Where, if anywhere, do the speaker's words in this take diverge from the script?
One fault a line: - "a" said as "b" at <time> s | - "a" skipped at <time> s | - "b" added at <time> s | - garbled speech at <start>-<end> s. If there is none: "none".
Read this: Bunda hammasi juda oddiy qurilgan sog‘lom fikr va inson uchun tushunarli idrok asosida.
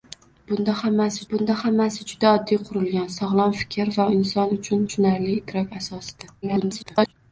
- "bunda hammasi" added at 1.3 s
- garbled speech at 6.4-7.1 s